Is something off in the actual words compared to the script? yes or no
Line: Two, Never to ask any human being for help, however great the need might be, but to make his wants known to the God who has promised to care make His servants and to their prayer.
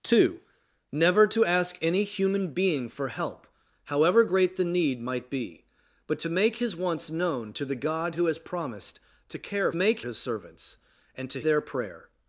no